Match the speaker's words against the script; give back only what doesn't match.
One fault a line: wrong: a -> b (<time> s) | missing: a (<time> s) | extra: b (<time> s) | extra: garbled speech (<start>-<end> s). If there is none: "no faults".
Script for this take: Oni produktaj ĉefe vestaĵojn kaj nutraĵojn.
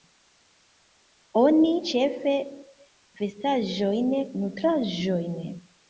missing: produktaj (1.7 s)
missing: kaj (4.2 s)